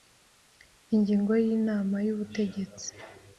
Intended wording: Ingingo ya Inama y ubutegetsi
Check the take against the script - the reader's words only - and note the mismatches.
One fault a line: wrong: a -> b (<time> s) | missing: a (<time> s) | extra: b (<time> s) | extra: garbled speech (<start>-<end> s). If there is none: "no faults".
no faults